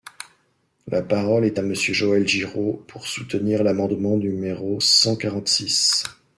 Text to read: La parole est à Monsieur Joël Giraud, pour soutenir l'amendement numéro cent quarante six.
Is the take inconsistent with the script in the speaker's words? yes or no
no